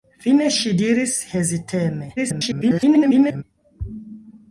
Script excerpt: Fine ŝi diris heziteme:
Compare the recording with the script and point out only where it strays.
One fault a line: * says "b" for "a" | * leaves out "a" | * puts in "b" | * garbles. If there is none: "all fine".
* garbles